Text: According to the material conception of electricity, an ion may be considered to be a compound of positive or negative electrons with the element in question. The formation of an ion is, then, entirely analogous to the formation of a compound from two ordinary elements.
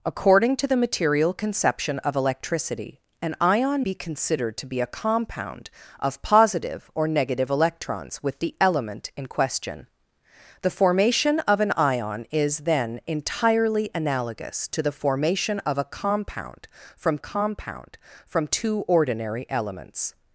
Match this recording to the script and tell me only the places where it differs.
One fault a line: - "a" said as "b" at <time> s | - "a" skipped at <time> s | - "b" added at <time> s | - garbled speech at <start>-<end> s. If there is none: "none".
- "may" skipped at 3.9 s
- "compound from" added at 17.2 s